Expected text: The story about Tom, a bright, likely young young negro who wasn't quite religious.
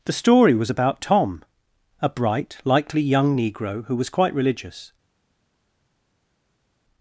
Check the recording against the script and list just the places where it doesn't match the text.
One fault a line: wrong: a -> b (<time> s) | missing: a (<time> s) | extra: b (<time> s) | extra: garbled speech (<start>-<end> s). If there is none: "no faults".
extra: was (0.6 s)
missing: young (3.4 s)
wrong: wasn't -> was (4.0 s)